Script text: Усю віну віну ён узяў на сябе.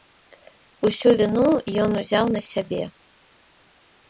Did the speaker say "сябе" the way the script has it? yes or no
yes